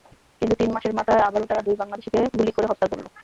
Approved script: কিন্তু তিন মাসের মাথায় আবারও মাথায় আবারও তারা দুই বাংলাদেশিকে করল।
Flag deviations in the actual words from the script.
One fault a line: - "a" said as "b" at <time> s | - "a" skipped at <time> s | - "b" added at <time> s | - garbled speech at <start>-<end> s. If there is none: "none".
- "মাথায় আবারও" skipped at 1.5 s
- "গুলি করে হত্যা" added at 2.3 s